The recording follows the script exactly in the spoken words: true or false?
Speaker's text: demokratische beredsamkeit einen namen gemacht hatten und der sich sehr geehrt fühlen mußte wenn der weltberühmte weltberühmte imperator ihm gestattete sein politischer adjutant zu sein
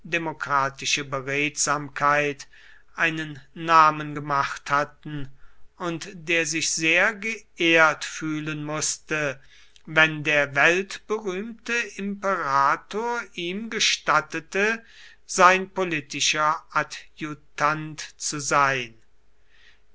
false